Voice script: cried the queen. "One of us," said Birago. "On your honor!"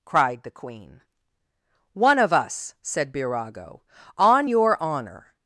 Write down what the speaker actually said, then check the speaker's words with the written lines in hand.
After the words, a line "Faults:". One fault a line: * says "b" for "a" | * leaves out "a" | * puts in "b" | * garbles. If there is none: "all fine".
cried the queen. "One of us," said Birago. "On your honor!"
Faults:
all fine